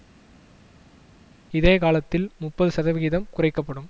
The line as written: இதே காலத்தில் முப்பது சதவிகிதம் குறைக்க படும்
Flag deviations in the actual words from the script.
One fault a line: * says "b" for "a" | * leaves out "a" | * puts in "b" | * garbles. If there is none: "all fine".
all fine